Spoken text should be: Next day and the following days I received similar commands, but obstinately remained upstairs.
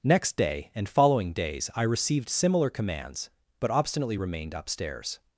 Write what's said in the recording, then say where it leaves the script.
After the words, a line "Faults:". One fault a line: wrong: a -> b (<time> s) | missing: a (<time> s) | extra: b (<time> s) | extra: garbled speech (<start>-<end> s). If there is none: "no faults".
Next day and following days I received similar commands, but obstinately remained upstairs.
Faults:
missing: the (0.9 s)